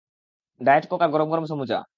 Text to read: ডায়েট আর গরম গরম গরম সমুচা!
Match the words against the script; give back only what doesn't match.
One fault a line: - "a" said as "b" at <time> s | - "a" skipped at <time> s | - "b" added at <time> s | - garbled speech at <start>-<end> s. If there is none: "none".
- "কোক" added at 0.9 s
- "গরম" skipped at 1.4 s